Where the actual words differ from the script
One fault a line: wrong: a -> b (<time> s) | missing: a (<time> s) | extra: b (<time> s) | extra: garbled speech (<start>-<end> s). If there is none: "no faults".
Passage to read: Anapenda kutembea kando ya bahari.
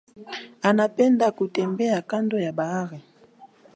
no faults